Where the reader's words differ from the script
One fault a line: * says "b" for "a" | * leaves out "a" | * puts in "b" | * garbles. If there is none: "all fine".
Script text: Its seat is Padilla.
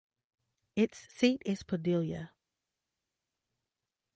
all fine